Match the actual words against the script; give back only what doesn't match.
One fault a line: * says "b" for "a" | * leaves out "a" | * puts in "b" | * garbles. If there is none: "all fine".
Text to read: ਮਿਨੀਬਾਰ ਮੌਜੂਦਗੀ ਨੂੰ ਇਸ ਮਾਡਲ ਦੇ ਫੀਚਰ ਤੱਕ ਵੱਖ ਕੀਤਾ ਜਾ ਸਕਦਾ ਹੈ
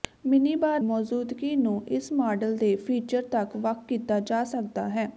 all fine